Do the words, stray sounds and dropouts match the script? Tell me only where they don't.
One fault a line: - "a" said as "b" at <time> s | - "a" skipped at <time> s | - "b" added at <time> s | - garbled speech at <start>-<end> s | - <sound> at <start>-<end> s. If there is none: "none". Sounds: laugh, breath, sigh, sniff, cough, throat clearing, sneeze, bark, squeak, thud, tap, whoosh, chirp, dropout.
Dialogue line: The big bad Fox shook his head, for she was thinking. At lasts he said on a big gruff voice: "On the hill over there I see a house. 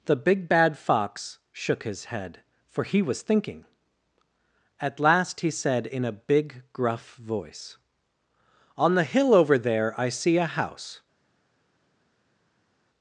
- "she" said as "he" at 2.8 s
- "lasts" said as "last" at 5.0 s
- "on" said as "in" at 5.9 s